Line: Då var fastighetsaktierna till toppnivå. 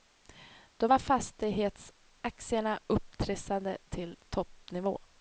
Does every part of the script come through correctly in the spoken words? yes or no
no